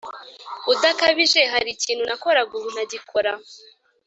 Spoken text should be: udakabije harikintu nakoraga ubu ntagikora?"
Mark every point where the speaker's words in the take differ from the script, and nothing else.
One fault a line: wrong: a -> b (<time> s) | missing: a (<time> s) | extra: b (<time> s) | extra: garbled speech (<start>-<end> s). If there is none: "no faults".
no faults